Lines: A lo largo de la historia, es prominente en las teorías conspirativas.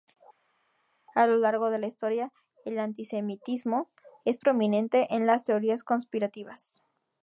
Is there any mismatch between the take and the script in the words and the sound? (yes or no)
yes